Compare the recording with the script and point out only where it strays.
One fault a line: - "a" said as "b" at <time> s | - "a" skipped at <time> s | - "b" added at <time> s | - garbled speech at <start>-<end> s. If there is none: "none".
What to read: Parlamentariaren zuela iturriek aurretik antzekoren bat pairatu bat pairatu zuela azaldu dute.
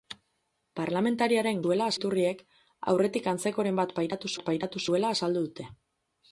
none